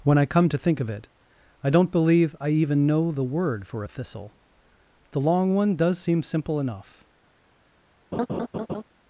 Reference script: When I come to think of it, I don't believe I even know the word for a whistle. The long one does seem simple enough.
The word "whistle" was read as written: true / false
false